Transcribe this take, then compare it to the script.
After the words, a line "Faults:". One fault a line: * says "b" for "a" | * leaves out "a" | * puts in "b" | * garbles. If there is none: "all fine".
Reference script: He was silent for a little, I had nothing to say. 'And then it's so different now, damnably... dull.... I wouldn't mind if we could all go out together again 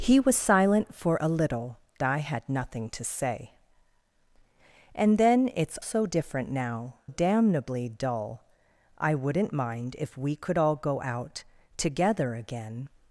He was silent for a little, I had nothing to say. 'And then it's so different now, damnably... dull.... I wouldn't mind if we could all go out together again
Faults:
all fine